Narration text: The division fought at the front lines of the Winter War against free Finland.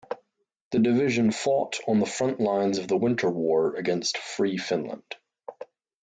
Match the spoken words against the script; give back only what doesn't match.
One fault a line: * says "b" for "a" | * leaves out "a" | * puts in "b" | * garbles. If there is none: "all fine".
* says "on" for "at"